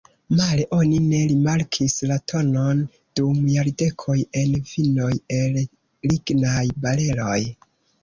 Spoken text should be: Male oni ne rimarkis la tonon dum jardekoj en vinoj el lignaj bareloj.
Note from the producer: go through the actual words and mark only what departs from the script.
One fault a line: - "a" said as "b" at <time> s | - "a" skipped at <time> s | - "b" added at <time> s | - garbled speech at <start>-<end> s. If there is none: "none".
none